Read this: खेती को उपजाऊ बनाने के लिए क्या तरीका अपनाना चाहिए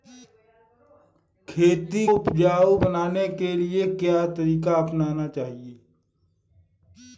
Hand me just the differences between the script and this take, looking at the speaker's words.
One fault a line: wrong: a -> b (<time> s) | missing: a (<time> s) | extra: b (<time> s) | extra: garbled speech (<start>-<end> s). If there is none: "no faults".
missing: को (2.1 s)